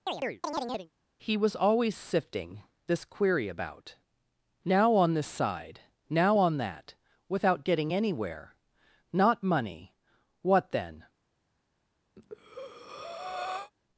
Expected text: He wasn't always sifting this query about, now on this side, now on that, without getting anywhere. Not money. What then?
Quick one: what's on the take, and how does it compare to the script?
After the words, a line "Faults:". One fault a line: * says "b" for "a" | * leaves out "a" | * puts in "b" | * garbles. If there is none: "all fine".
He was always sifting this query about, now on this side, now on that, without getting anywhere. Not money. What then?
Faults:
* says "was" for "wasn't"